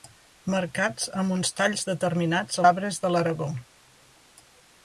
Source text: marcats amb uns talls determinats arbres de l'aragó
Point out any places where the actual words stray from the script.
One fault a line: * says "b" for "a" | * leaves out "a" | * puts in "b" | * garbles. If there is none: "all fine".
all fine